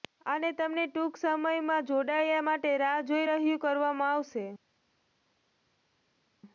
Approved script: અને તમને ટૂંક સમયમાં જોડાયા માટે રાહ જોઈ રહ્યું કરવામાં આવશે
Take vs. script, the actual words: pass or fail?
pass